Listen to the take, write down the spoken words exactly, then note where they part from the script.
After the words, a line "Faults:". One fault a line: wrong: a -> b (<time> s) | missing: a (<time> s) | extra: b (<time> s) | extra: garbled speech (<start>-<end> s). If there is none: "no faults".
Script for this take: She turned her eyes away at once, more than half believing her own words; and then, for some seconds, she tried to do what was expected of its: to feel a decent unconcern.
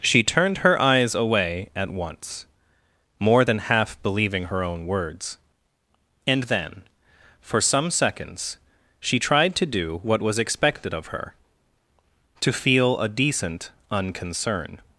She turned her eyes away at once, more than half believing her own words; and then, for some seconds, she tried to do what was expected of her: to feel a decent unconcern.
Faults:
wrong: its -> her (11.1 s)